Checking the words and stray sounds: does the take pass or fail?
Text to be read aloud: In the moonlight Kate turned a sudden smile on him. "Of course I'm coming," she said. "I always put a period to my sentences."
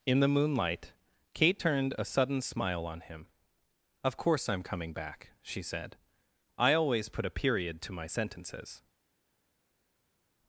fail